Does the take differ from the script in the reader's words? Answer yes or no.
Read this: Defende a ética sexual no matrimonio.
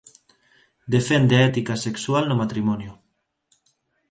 no